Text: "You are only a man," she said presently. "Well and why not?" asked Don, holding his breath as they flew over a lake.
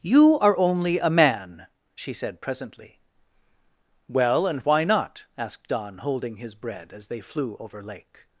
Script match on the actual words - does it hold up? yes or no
no